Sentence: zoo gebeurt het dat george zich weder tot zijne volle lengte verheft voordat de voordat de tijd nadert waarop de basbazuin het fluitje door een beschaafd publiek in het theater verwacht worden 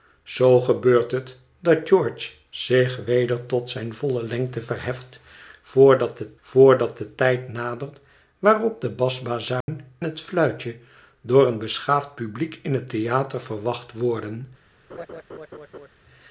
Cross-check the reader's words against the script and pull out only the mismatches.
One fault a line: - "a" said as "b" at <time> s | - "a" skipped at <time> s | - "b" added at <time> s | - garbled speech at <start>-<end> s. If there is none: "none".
none